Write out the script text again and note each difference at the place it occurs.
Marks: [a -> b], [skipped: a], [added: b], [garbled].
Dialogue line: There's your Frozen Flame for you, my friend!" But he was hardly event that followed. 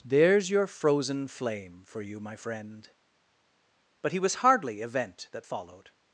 There's your Frozen Flame for you, my friend!" But he was hardly event that followed.